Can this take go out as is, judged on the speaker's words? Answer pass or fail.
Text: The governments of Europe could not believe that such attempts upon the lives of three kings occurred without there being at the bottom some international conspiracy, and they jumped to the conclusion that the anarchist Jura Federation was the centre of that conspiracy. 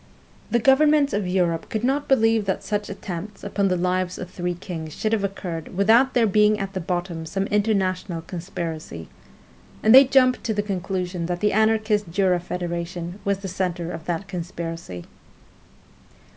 fail